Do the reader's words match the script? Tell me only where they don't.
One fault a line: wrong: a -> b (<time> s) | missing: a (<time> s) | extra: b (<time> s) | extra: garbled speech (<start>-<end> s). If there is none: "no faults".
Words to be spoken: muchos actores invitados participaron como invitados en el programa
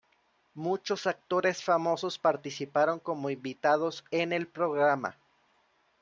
wrong: invitados -> famosos (1.6 s)